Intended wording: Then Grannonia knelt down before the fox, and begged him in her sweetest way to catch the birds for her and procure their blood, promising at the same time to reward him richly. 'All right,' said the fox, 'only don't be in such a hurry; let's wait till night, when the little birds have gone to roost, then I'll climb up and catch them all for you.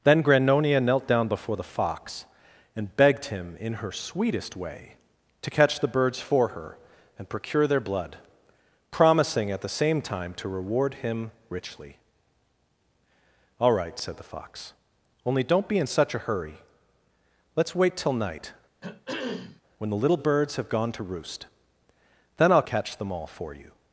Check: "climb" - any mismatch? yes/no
yes